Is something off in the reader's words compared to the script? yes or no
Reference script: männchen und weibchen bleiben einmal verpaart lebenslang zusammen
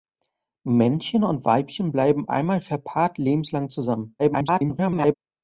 yes